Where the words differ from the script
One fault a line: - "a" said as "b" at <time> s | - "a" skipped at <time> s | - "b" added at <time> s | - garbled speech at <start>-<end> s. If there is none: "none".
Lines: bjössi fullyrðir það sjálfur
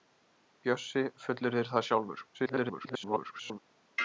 - garbled speech at 2.3-3.6 s